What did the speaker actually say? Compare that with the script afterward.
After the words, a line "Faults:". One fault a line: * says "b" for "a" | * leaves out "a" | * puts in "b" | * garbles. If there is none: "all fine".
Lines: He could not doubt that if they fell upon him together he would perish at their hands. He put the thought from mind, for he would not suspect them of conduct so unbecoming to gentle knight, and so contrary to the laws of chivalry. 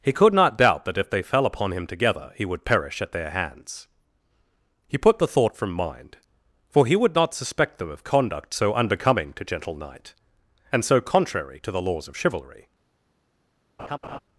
He could not doubt that if they fell upon him together he would perish at their hands. He put the thought from mind, for he would not suspect them of conduct so unbecoming to gentle knight, and so contrary to the laws of chivalry.
Faults:
all fine